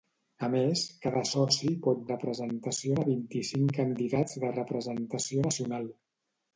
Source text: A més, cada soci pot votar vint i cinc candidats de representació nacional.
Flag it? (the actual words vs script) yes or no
yes